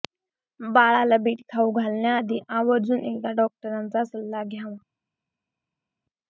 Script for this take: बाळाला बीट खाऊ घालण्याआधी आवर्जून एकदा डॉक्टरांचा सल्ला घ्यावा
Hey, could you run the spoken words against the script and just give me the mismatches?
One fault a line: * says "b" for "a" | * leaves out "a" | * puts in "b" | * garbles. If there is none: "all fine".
all fine